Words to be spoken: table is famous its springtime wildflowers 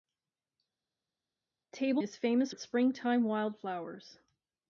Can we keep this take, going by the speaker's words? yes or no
yes